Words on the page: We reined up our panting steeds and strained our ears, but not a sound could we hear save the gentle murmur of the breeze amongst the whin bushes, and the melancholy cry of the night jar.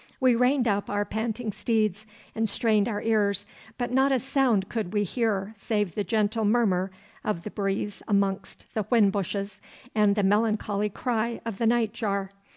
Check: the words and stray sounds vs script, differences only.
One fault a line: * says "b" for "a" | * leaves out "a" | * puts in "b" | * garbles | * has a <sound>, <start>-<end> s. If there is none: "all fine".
all fine